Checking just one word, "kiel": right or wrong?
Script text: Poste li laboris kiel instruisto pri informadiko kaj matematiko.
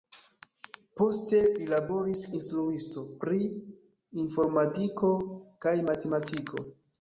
wrong